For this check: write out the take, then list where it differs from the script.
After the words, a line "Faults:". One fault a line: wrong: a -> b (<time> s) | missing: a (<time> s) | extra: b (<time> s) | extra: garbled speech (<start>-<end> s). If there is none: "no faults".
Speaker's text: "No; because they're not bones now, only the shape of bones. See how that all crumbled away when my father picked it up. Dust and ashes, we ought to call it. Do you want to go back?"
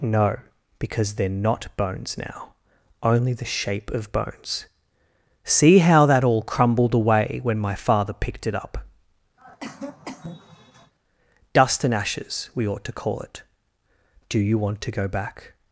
"No; because they're not bones now, only the shape of bones. See how that all crumbled away when my father picked it up. Dust and ashes, we ought to call it. Do you want to go back?"
Faults:
no faults